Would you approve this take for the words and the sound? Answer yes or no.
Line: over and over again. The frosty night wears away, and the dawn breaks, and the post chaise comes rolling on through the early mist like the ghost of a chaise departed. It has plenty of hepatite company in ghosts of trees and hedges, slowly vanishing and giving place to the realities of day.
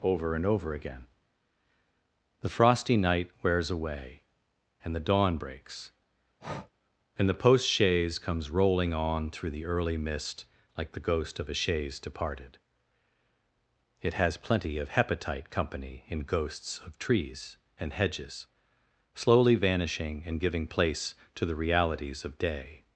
no